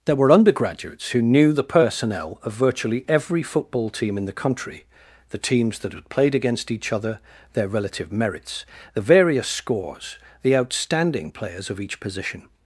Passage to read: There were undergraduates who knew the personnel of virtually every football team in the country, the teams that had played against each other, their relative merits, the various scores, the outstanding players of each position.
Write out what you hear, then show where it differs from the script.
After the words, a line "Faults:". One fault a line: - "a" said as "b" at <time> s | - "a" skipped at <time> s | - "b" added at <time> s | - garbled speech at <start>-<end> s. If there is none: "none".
There were undergraduates who knew the personnel of virtually every football team in the country, the teams that had played against each other, their relative merits, the various scores, the outstanding players of each position.
Faults:
none